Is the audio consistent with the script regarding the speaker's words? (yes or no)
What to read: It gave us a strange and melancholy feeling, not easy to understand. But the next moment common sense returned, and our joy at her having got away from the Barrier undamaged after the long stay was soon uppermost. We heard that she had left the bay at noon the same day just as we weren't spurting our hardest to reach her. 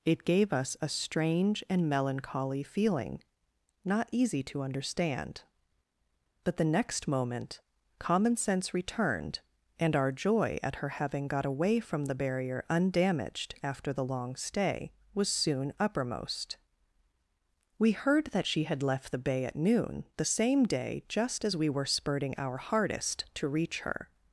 no